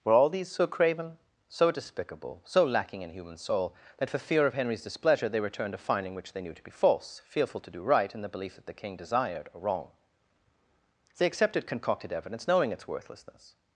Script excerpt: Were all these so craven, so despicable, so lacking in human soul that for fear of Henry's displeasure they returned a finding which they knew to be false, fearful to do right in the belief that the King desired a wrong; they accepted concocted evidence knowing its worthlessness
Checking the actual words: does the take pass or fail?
pass